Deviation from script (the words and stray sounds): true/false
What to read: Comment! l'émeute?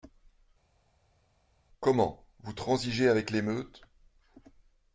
true